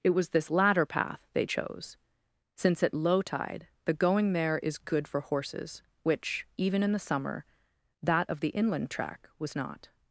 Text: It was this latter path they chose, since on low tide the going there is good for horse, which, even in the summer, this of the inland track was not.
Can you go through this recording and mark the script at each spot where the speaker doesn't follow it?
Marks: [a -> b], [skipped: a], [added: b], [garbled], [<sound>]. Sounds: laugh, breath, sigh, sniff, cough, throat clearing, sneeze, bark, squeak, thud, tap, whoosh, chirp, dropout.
It was this latter path they chose, since [on -> at] low tide the going there is good for [horse, -> horses] which, even in the summer, [this -> that] of the inland track was not.